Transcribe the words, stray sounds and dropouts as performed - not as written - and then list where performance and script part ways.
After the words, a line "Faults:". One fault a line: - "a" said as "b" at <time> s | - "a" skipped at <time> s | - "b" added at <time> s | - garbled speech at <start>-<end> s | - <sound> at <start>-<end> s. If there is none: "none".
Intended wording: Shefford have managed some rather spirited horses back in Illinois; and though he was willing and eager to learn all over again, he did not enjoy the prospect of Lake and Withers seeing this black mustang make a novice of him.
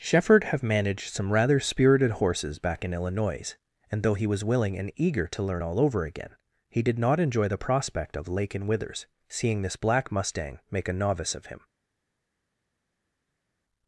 Shefford have managed some rather spirited horses back in Illinois; and though he was willing and eager to learn all over again, he did not enjoy the prospect of Lake and Withers seeing this black mustang make a novice of him.
Faults:
none